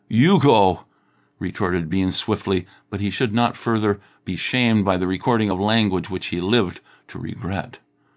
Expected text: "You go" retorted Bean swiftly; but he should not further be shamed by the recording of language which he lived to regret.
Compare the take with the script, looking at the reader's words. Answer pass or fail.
pass